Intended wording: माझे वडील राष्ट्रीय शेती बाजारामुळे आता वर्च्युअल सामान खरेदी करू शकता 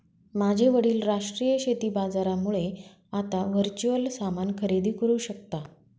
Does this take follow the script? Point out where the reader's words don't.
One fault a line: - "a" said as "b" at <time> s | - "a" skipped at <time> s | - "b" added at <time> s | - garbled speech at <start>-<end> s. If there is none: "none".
none